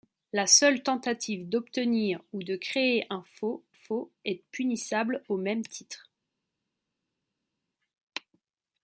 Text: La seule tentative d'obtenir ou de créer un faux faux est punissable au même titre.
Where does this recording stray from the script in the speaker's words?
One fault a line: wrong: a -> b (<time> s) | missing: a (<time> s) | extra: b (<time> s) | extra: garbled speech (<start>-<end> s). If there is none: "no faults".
no faults